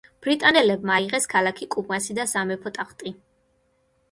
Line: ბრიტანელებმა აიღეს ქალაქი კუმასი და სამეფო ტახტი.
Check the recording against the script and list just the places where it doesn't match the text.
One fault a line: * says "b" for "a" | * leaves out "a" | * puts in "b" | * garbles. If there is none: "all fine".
all fine